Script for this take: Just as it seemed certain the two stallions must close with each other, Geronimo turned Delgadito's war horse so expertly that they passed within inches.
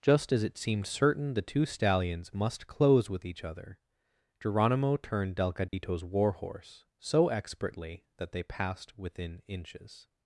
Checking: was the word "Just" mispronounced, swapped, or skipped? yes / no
no